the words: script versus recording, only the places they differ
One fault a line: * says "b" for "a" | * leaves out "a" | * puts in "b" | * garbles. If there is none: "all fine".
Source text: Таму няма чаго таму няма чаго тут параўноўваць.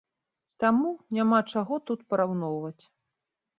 * leaves out "таму няма чаго"